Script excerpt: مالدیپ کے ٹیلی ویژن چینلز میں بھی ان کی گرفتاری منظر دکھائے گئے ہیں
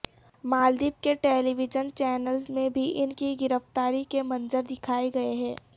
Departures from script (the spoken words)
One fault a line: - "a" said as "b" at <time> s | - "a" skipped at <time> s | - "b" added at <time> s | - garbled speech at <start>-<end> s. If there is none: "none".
- "کے" added at 4.1 s